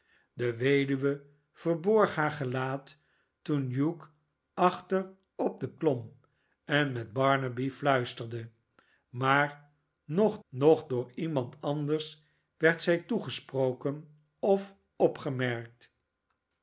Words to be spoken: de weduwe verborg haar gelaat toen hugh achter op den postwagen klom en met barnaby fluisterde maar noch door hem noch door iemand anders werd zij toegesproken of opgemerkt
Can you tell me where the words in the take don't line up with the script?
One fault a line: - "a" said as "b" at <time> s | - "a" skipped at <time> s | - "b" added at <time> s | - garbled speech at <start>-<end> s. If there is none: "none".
- "postwagen" skipped at 5.8 s
- "door hem" skipped at 10.4 s